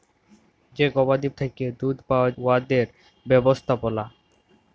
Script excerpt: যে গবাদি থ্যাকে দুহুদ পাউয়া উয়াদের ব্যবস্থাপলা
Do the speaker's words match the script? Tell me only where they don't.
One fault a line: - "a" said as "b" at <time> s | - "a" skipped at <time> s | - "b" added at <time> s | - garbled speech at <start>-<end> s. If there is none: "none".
none